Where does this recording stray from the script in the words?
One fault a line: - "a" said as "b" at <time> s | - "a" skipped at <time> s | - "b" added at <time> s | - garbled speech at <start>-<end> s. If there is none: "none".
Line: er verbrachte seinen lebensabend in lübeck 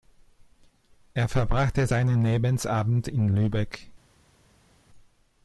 none